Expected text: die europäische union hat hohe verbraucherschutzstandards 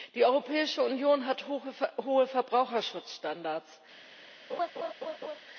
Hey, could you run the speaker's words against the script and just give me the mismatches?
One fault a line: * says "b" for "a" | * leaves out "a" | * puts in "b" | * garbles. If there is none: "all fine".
all fine